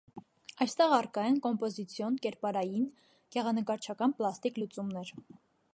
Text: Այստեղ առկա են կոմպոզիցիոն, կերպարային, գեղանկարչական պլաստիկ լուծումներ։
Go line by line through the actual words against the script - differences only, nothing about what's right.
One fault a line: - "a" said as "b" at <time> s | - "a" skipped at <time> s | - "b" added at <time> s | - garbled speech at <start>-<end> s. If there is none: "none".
none